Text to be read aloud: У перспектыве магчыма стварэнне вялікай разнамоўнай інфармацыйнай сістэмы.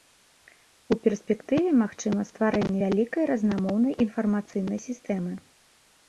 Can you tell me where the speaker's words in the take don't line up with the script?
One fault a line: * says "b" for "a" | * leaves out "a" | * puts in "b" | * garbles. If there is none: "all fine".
all fine